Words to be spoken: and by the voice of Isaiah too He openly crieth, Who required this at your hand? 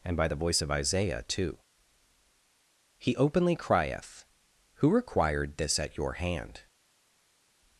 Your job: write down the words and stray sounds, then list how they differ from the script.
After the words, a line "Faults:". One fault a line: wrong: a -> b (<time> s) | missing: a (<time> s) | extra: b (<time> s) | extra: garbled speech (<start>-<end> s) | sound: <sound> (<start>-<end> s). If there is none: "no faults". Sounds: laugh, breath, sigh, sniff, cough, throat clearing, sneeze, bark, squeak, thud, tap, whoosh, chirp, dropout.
and by the voice of Isaiah too He openly crieth, Who required this at your hand?
Faults:
no faults